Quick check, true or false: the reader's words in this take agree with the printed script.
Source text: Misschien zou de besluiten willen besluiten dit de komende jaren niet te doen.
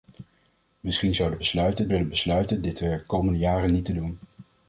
true